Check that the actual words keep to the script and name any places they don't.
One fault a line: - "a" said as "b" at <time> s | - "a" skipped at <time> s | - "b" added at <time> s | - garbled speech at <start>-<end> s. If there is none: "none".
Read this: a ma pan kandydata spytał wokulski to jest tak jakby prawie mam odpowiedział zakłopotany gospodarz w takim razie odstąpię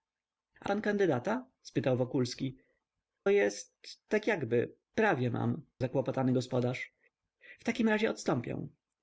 - "ma" skipped at 0.7 s
- "to" skipped at 2.6 s
- "odpowiedział" skipped at 5.6 s